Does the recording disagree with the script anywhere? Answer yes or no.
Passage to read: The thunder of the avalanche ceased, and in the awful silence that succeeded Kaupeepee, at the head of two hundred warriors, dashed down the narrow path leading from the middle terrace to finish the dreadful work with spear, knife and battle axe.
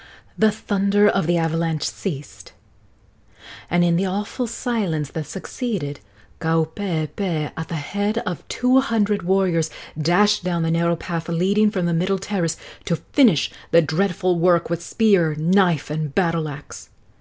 no